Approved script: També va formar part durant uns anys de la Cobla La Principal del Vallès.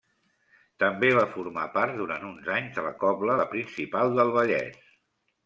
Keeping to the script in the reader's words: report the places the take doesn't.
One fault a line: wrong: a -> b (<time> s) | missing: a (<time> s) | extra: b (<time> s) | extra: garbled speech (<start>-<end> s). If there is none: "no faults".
no faults